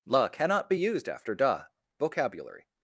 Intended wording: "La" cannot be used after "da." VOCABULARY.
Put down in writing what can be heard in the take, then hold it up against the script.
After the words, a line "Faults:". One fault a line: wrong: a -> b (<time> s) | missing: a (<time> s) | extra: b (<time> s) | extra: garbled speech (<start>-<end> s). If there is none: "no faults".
"La" cannot be used after "da." VOCABULARY.
Faults:
no faults